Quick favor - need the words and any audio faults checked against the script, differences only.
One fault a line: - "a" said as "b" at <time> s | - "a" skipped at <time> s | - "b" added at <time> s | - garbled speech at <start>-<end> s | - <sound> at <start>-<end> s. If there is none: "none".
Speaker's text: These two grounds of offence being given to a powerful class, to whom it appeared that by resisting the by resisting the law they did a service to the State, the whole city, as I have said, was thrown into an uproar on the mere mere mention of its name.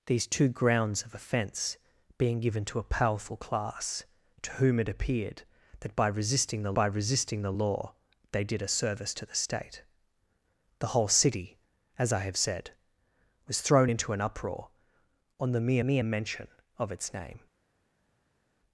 none